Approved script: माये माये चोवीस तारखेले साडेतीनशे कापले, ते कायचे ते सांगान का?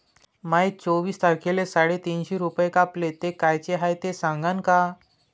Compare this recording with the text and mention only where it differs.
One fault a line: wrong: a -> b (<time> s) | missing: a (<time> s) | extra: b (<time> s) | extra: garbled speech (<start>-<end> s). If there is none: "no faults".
missing: माये (0.7 s)
extra: रूपे (2.4 s)
extra: हाय (3.8 s)